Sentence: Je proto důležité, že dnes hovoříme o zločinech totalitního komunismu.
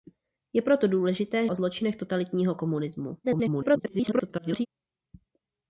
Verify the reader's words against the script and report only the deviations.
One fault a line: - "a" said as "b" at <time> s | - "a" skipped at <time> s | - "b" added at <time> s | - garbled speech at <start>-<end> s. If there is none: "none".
- "že dnes hovoříme" skipped at 1.5 s
- garbled speech at 3.2-4.7 s